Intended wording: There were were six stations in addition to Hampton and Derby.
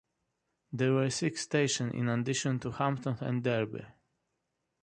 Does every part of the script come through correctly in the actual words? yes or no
no